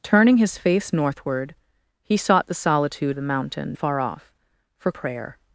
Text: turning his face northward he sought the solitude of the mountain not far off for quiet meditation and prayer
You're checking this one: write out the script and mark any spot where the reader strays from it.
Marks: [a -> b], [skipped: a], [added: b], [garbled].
turning his face northward he sought the solitude [skipped: of] the mountain [skipped: not] far off for [skipped: quiet meditation and] prayer